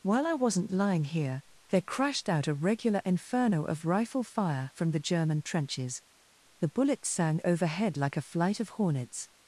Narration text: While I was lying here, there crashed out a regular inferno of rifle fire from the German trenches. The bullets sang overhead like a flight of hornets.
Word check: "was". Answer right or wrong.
wrong